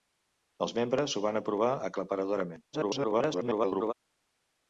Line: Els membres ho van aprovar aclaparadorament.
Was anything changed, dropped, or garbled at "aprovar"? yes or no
no